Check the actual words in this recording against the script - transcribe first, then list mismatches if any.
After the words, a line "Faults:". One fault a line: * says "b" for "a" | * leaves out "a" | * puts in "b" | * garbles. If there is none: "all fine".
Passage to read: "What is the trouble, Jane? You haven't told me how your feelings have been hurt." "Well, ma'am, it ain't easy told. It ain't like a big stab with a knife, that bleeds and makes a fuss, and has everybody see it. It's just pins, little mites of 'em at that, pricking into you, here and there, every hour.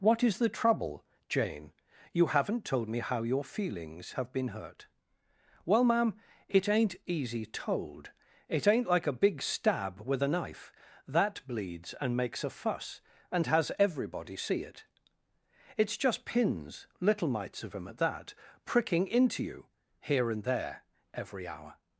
"What is the trouble, Jane? You haven't told me how your feelings have been hurt." "Well, ma'am, it ain't easy told. It ain't like a big stab with a knife, that bleeds and makes a fuss, and has everybody see it. It's just pins, little mites of 'em at that, pricking into you, here and there, every hour.
Faults:
all fine